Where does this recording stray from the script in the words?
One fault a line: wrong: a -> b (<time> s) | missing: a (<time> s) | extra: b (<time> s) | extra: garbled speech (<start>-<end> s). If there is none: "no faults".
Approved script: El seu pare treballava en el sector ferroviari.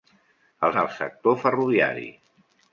missing: seu pare treballava (0.7 s)